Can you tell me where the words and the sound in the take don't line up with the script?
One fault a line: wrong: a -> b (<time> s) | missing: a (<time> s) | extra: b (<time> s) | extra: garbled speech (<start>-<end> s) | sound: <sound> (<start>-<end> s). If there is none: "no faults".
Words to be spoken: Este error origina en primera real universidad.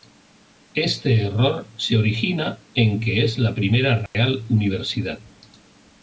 extra: se (1.8 s)
extra: que es la (3.0 s)
sound: dropout (4.1-4.1 s)